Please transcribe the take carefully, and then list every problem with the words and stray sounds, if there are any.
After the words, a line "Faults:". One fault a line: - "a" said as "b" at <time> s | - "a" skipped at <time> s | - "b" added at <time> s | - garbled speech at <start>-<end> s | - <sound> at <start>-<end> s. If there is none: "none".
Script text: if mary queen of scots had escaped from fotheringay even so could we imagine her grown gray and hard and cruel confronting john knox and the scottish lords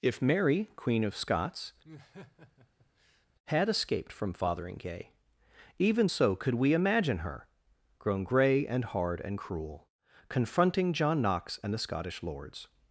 if mary queen of scots had escaped from fotheringay even so could we imagine her grown gray and hard and cruel confronting john knox and the scottish lords
Faults:
- laugh at 1.8-3.3 s